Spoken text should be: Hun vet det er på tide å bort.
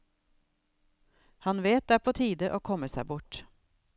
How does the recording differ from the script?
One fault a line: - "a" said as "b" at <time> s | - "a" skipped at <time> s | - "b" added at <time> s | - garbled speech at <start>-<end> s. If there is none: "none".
- "Hun" said as "Han" at 1.4 s
- "komme seg" added at 2.7 s